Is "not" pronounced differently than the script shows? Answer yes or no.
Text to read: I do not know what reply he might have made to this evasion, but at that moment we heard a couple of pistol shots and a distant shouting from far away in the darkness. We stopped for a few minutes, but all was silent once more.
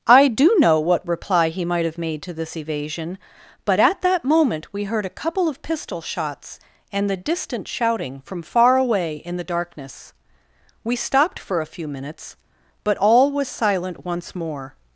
yes